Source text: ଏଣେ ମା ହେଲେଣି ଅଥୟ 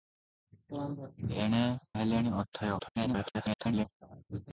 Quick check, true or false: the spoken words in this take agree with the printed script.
false